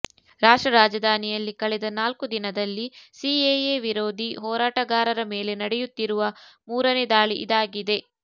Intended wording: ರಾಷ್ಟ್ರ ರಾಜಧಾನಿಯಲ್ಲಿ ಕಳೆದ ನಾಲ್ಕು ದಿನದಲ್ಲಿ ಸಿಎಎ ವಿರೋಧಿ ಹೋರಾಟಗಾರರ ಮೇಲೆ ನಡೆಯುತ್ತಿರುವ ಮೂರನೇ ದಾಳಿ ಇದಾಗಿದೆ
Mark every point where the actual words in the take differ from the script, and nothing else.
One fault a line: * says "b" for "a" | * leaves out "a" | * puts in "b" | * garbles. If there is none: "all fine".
all fine